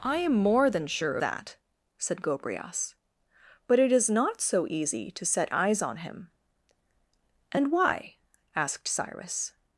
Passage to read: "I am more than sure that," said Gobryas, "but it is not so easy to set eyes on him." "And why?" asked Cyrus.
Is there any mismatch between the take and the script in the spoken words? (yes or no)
no